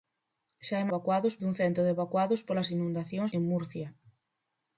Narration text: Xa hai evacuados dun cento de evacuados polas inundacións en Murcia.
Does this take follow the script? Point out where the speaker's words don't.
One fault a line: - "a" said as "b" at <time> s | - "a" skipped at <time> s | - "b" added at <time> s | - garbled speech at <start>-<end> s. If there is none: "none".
none